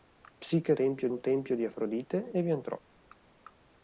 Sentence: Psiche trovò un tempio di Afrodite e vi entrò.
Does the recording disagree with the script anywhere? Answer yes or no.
yes